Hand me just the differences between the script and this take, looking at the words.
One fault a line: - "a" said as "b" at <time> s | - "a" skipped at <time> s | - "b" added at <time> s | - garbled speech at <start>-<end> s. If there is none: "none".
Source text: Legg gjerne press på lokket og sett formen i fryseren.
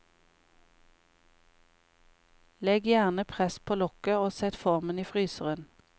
none